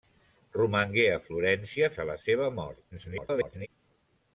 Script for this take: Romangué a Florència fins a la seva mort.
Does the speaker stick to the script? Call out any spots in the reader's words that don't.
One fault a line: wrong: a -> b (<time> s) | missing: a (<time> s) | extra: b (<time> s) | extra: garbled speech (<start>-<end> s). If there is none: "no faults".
missing: fins (1.9 s)
extra: garbled speech (2.9-3.7 s)